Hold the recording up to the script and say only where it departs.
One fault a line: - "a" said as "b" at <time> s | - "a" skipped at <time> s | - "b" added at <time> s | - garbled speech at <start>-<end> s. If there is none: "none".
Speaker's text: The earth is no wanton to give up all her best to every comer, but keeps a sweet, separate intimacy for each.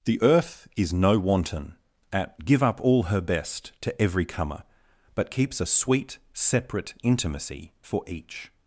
- "to" said as "at" at 2.1 s